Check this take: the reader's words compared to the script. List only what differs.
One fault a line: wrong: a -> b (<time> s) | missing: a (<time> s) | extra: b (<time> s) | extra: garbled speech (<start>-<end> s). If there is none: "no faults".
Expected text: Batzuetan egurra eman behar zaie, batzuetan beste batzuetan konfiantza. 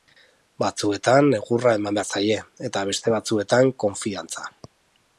wrong: batzuetan -> eta (2.7 s)